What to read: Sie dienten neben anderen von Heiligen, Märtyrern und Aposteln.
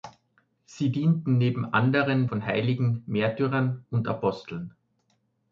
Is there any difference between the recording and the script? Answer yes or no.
no